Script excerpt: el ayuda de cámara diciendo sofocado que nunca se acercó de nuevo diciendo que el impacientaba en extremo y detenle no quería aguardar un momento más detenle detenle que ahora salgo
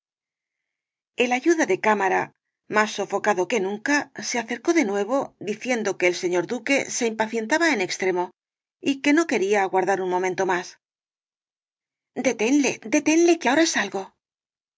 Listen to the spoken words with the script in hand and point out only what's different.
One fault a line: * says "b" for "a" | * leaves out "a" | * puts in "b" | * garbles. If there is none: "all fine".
* says "más" for "diciendo"
* puts in "señor duque se"
* says "que" for "detenle"